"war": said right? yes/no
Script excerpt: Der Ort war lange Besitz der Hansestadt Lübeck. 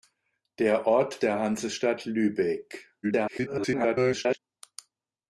no